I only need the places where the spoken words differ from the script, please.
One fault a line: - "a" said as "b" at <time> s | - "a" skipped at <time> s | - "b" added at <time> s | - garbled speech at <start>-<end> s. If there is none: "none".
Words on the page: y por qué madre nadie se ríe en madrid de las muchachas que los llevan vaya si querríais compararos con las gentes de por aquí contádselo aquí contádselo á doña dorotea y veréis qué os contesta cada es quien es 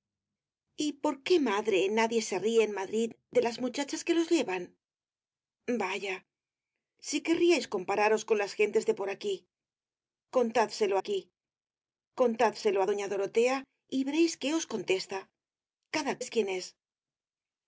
none